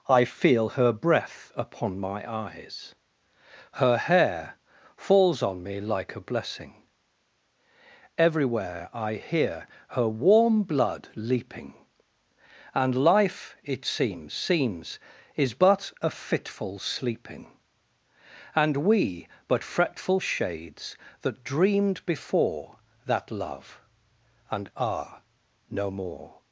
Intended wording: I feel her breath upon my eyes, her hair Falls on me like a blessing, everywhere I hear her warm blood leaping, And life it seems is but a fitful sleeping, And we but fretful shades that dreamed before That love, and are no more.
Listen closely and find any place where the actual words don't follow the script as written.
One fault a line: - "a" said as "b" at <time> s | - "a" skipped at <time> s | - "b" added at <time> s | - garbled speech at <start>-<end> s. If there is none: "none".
- "seems" added at 14.3 s